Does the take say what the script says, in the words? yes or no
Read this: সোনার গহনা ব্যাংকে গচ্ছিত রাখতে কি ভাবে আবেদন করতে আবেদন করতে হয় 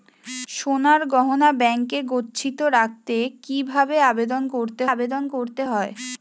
yes